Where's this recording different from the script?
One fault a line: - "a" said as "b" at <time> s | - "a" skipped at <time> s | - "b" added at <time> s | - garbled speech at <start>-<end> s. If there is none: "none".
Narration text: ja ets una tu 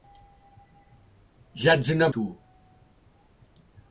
none